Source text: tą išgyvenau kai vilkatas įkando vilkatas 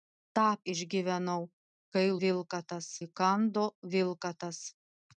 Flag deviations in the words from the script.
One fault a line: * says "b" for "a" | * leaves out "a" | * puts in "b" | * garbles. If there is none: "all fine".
all fine